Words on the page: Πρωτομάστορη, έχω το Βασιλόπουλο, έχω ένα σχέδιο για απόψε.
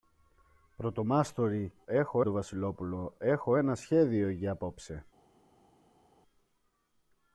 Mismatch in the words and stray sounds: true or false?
false